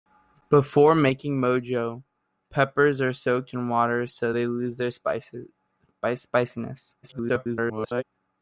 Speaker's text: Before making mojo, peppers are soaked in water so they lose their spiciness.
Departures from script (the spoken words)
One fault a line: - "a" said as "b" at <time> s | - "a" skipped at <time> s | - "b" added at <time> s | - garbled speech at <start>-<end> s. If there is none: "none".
- garbled speech at 7.0-8.0 s